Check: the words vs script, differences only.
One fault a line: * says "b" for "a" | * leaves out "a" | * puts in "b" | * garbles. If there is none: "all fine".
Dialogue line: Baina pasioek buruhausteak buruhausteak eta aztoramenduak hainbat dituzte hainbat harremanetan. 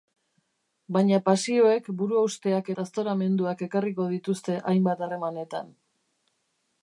* leaves out "buruhausteak"
* says "ekarriko" for "hainbat"